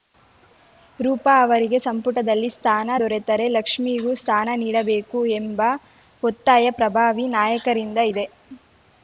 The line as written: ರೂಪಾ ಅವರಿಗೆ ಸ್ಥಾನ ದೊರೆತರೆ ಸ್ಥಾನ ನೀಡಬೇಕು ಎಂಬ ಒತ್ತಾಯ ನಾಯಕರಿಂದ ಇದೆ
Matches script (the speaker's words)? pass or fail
fail